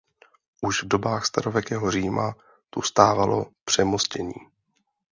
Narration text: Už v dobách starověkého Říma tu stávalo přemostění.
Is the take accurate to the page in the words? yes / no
yes